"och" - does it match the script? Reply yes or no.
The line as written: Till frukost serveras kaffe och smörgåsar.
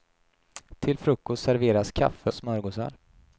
no